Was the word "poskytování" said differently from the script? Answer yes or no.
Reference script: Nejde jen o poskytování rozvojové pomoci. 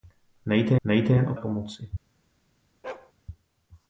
yes